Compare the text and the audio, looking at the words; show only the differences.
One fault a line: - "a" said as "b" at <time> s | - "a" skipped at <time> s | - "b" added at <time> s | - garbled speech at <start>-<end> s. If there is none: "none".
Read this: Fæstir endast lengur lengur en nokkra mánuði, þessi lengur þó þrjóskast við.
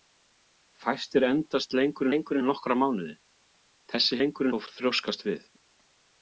none